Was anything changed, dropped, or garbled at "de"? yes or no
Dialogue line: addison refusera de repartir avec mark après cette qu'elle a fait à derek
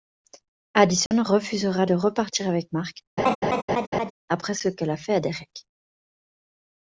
no